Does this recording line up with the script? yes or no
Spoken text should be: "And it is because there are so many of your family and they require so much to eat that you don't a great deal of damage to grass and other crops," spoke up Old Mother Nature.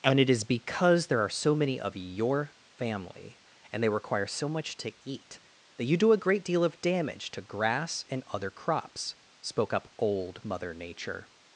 no